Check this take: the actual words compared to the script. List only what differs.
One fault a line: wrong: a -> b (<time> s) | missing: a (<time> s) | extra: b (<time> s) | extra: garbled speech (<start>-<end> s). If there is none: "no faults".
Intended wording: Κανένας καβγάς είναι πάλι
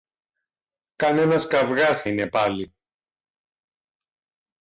no faults